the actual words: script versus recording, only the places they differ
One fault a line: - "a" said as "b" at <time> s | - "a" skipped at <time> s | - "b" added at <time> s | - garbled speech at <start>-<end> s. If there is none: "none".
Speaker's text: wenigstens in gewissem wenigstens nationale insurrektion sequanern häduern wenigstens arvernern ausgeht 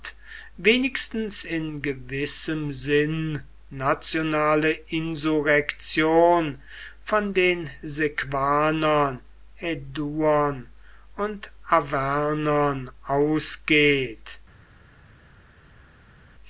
- "wenigstens" said as "sinn" at 2.7 s
- "von den" added at 7.0 s
- "wenigstens" said as "und" at 11.2 s